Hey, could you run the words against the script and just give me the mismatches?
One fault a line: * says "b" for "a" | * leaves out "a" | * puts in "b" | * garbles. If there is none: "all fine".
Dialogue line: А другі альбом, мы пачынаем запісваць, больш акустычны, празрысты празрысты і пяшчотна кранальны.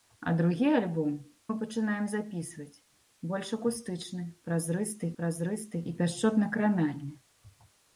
all fine